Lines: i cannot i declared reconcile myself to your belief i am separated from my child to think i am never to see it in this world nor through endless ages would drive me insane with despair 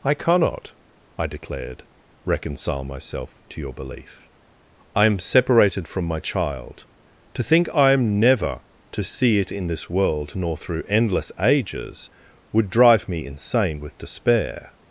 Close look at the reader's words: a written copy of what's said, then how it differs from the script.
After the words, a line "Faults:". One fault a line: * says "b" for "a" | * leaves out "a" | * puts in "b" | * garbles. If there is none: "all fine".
i cannot i declared reconcile myself to your belief i am separated from my child to think i am never to see it in this world nor through endless ages would drive me insane with despair
Faults:
all fine